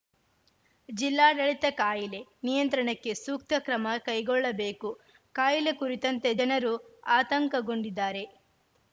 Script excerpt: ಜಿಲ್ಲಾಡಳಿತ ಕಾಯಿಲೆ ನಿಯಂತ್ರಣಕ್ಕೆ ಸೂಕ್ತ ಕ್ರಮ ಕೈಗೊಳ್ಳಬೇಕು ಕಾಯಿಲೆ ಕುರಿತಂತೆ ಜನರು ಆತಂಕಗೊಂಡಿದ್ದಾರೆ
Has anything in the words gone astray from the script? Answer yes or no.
no